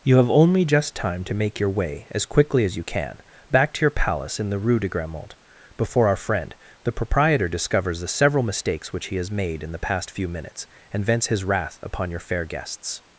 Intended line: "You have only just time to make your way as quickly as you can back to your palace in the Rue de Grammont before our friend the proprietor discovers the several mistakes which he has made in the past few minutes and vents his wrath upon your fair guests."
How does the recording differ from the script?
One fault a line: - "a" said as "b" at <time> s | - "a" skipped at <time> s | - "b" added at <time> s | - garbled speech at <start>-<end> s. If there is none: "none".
none